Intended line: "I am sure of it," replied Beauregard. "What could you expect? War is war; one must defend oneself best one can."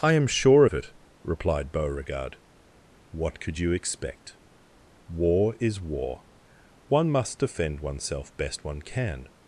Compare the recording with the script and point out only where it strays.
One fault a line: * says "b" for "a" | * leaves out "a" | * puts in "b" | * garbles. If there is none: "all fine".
all fine